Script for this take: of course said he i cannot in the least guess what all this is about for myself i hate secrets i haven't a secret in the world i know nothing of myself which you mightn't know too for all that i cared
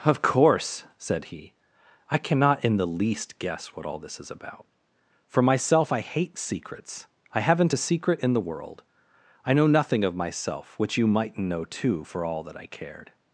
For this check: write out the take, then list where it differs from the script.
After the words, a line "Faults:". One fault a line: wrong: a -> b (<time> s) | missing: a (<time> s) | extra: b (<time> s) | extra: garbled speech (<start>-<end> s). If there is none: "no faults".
of course said he i cannot in the least guess what all this is about for myself i hate secrets i haven't a secret in the world i know nothing of myself which you mightn't know too for all that i cared
Faults:
no faults